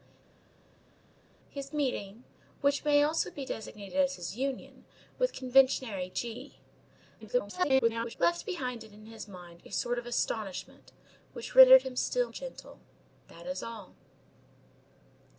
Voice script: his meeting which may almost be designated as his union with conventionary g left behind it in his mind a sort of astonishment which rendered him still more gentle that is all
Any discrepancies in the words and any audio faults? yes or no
yes